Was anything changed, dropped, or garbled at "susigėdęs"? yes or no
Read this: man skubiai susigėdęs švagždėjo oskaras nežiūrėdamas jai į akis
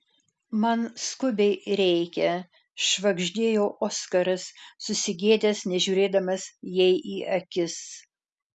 yes